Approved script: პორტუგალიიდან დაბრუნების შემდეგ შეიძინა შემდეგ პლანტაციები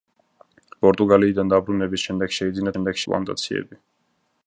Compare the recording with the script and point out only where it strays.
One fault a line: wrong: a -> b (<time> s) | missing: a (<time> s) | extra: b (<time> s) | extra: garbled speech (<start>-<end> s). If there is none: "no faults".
no faults